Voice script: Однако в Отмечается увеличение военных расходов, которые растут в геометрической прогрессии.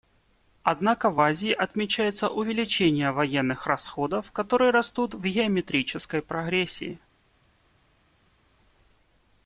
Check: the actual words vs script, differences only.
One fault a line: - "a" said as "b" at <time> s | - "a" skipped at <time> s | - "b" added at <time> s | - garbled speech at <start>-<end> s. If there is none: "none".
- "Азии" added at 1.2 s